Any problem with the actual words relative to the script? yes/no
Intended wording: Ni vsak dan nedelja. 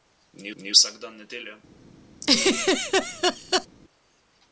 yes